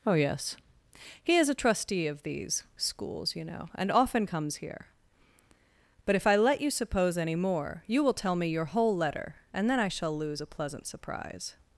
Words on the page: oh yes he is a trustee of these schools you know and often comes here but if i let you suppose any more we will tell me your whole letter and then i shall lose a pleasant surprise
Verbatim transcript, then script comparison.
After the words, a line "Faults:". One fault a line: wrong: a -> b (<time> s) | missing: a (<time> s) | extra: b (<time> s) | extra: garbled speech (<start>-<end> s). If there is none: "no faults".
oh yes he is a trustee of these schools you know and often comes here but if i let you suppose any more you will tell me your whole letter and then i shall lose a pleasant surprise
Faults:
wrong: we -> you (7.9 s)